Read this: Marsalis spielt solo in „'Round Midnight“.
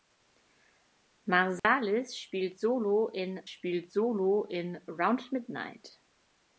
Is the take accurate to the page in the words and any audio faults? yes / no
no